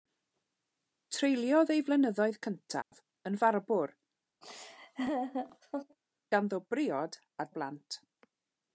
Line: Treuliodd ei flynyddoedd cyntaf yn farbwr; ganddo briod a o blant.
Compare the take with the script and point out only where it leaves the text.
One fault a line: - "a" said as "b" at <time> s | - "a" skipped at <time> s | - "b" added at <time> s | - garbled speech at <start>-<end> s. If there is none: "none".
none